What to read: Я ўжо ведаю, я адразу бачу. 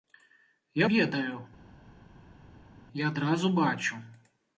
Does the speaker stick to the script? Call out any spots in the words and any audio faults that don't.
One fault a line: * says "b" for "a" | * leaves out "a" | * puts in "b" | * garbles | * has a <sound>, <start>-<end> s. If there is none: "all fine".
* leaves out "ўжо"